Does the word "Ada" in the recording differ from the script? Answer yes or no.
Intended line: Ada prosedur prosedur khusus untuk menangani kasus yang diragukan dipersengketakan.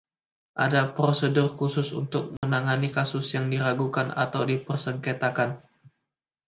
no